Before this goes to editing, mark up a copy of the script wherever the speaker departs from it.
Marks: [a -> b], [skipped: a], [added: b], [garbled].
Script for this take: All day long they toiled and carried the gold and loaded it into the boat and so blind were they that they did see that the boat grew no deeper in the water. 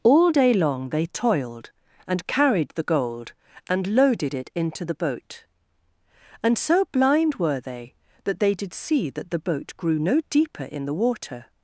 All day long they toiled and carried the gold and loaded it into the boat and so blind were they that they did see that the boat grew no deeper in the water.